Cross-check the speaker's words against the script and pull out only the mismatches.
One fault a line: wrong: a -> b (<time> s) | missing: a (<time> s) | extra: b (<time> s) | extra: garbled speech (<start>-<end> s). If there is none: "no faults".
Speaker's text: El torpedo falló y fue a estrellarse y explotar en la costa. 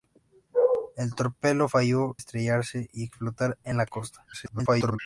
missing: y fue a (2.2 s)
extra: garbled speech (4.3-5.0 s)